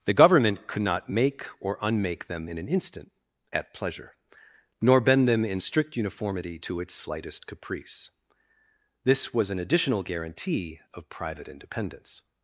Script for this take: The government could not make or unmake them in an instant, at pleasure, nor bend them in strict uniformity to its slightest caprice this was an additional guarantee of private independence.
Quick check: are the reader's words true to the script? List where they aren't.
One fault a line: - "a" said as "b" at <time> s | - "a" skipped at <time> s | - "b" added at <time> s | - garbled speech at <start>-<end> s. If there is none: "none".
none